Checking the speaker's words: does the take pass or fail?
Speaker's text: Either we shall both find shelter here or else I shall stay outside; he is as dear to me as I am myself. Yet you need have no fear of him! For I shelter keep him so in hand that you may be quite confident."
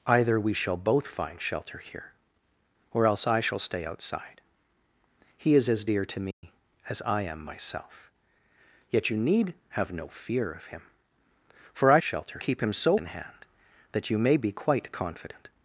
pass